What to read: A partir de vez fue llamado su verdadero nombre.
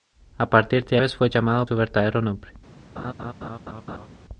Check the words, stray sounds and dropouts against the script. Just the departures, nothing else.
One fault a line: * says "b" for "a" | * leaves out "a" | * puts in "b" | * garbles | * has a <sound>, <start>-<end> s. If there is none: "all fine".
* has a laugh, 3.0-4.1 s